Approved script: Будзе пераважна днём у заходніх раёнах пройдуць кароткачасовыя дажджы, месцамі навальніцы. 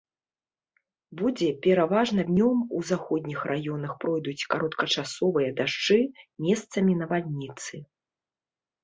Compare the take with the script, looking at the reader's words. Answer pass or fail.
pass